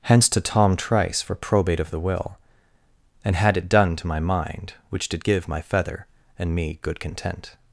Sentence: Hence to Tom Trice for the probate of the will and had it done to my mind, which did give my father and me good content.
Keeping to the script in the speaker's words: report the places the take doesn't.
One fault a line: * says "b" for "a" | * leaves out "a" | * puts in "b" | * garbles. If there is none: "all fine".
* leaves out "the"
* says "feather" for "father"